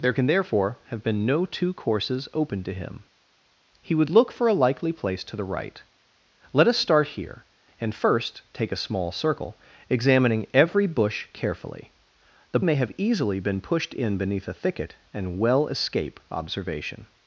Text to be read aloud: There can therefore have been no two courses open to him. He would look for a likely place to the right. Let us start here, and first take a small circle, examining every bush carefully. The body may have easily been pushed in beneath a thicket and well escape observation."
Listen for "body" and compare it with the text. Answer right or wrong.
wrong